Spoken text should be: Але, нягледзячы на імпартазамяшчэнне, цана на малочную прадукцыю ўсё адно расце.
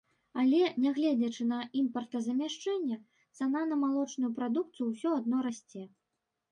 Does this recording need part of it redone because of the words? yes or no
no